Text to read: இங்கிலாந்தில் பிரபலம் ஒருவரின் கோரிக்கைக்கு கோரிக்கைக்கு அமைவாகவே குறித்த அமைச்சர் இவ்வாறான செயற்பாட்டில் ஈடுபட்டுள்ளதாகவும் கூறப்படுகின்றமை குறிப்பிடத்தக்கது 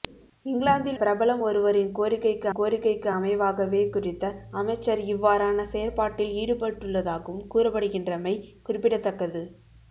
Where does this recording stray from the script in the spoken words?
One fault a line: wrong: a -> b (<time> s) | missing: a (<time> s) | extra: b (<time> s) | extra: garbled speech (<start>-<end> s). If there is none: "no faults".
no faults